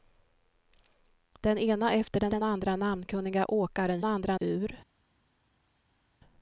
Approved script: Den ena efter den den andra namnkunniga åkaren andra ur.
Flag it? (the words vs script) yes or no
no